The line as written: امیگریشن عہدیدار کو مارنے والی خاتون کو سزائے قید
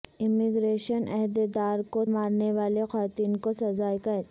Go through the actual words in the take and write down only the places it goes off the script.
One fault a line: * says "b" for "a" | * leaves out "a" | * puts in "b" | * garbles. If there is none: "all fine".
all fine